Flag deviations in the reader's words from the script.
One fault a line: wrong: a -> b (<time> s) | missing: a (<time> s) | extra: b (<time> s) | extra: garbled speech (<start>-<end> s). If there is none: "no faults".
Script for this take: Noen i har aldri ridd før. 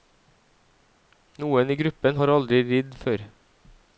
extra: gruppen (1.8 s)